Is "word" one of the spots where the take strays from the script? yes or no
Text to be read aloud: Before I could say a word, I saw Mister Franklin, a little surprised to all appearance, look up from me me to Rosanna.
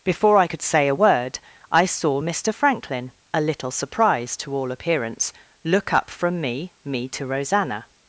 no